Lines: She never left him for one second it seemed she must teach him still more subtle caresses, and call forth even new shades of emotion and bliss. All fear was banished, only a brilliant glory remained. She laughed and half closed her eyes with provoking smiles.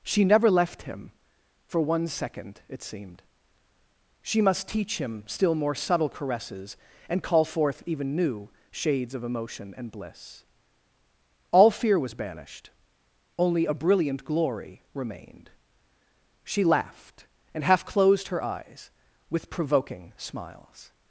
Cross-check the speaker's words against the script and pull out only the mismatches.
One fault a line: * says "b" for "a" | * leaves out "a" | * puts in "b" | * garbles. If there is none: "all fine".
all fine